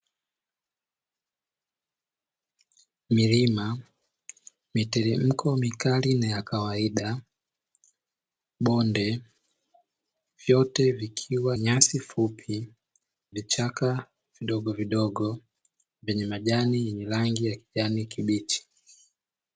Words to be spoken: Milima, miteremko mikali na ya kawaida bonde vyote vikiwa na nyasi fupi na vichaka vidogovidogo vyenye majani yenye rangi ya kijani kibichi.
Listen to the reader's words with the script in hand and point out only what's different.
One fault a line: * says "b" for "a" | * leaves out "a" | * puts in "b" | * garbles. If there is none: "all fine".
* leaves out "na"
* leaves out "na"